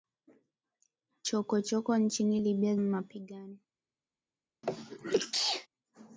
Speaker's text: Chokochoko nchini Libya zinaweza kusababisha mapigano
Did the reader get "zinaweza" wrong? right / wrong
wrong